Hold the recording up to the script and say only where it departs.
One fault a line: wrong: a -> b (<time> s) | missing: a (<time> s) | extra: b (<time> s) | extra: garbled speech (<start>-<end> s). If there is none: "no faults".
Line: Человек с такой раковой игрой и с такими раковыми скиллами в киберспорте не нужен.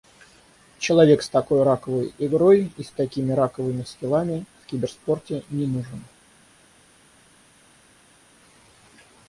no faults